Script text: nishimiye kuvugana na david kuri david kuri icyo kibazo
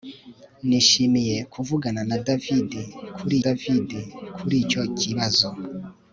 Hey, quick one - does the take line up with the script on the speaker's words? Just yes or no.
yes